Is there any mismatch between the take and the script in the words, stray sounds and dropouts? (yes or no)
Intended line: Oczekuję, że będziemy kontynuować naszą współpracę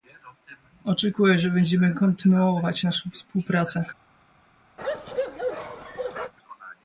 yes